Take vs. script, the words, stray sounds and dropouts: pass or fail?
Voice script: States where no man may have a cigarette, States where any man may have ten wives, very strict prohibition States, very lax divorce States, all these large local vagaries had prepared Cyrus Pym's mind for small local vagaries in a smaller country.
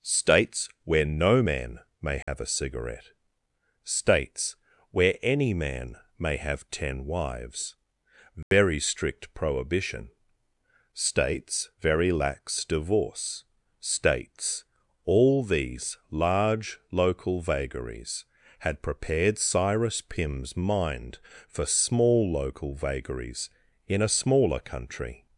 fail